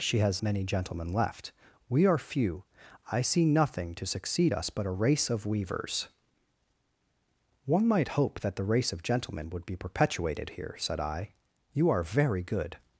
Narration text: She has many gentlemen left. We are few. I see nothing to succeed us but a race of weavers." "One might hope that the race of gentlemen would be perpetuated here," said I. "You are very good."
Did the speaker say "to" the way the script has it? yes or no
yes